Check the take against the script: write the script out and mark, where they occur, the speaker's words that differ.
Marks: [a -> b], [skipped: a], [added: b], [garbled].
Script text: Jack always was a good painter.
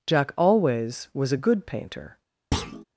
Jack always was a good painter.